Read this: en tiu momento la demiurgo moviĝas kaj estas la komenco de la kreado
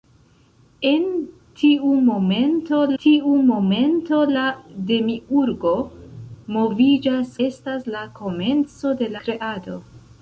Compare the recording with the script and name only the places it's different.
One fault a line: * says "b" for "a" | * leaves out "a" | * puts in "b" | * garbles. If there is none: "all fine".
* puts in "tiu momento"
* leaves out "kaj"
* leaves out "la"